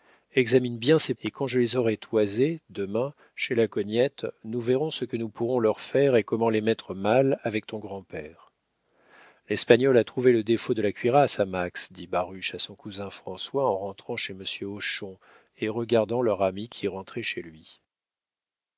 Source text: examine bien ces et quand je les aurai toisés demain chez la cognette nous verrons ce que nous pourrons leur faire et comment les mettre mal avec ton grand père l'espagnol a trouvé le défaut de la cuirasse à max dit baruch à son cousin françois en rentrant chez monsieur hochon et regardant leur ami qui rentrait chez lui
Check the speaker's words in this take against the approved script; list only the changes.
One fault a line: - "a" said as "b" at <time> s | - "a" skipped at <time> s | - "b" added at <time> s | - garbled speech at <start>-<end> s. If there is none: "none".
none